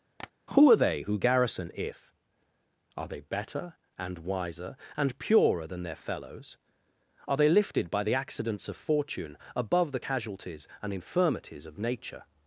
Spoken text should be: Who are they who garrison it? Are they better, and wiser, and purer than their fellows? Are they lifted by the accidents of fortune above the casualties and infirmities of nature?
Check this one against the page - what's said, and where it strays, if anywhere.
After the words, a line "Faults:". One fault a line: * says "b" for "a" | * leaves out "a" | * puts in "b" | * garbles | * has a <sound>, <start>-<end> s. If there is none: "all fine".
Who are they who garrison if? Are they better, and wiser, and purer than their fellows? Are they lifted by the accidents of fortune above the casualties and infirmities of nature?
Faults:
* has a tap, 0.2-0.3 s
* says "if" for "it"